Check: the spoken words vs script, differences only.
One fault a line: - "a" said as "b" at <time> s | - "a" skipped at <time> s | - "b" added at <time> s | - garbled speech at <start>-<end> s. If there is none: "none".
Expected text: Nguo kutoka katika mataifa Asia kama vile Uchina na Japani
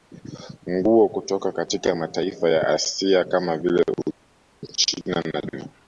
- "ya" added at 2.5 s